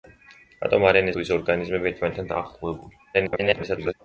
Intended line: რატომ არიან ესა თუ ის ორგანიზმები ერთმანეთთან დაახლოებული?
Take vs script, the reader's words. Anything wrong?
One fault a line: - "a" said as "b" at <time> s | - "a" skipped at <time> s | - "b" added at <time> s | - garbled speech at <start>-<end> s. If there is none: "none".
- "ესა" skipped at 1.1 s
- garbled speech at 3.1-3.9 s